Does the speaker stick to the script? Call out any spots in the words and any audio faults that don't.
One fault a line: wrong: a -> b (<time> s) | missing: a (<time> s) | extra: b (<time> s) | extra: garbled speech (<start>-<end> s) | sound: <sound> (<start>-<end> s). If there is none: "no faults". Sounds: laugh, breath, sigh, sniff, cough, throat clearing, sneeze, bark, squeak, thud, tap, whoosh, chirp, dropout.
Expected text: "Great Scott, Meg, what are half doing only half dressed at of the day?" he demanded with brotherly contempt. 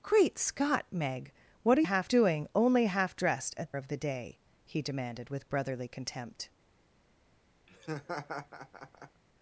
sound: laugh (7.7-9.2 s)